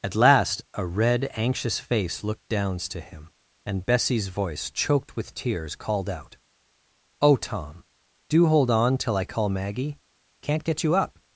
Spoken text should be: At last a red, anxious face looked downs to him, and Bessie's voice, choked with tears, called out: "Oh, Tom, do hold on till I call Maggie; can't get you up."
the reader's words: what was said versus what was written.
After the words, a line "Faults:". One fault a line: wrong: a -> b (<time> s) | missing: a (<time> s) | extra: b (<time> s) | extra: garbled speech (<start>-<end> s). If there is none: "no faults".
At last a red, anxious face looked downs to him, and Bessie's voice, choked with tears, called out: "Oh, Tom, do hold on till I call Maggie; can't get you up."
Faults:
no faults